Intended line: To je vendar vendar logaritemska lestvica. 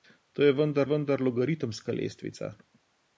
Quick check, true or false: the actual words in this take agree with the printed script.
true